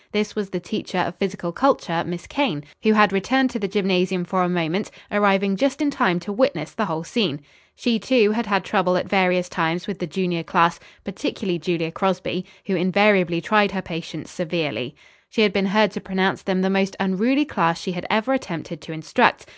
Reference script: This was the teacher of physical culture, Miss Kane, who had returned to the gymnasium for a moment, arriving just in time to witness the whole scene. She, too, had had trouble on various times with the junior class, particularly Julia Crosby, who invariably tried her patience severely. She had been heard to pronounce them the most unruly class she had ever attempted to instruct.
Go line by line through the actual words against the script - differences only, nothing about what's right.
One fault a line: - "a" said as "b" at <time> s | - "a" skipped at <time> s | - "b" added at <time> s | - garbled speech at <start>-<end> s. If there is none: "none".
- "on" said as "at" at 9.0 s